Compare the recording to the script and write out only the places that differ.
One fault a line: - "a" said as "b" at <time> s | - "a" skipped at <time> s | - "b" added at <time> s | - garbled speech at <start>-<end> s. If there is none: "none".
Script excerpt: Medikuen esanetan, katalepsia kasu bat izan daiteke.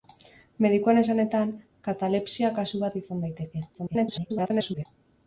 - garbled speech at 3.7-4.9 s